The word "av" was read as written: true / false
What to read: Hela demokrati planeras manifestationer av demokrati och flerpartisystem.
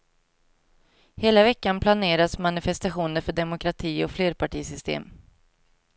false